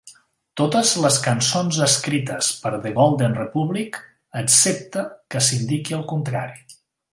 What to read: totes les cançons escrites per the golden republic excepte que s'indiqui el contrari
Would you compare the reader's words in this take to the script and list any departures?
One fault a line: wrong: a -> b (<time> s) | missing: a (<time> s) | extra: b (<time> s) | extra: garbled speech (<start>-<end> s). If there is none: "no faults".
no faults